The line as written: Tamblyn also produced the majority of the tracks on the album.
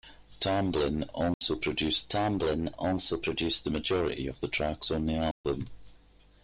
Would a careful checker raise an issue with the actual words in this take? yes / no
yes